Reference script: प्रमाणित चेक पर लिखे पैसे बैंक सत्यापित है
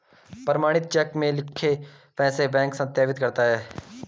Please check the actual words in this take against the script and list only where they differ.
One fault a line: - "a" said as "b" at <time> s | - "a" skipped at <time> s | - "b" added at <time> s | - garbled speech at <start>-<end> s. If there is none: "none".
- "पर" said as "में" at 1.1 s
- "करता" added at 3.2 s